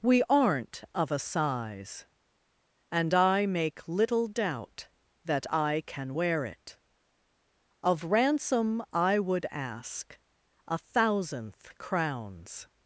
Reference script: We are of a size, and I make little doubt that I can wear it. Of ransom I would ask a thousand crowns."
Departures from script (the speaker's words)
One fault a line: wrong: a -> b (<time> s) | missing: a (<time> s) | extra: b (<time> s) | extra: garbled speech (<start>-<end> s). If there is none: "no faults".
wrong: are -> aren't (0.3 s)
wrong: thousand -> thousandth (10.8 s)